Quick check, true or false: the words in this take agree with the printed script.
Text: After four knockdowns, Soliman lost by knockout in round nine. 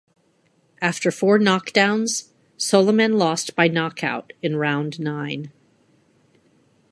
true